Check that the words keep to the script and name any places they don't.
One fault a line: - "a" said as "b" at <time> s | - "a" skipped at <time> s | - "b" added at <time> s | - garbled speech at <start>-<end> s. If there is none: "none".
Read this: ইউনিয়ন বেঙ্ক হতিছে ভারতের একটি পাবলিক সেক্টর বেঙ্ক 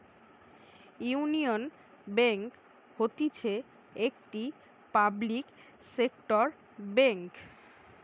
- "ভারতের" skipped at 3.5 s